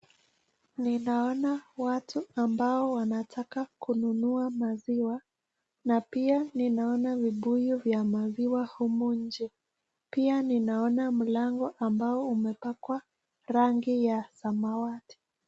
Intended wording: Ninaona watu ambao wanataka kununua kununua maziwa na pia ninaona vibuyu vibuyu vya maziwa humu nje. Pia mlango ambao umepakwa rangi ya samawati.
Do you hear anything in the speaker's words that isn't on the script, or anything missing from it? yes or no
yes